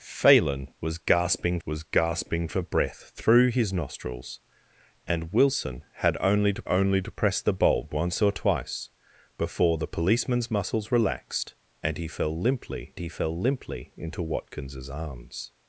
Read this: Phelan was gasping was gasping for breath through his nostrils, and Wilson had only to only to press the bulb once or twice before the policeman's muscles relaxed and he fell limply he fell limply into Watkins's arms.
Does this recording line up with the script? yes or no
yes